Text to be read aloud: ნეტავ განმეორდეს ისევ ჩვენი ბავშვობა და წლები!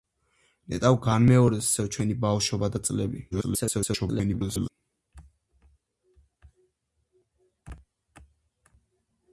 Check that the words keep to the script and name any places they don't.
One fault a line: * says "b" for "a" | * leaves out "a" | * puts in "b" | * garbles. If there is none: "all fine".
* garbles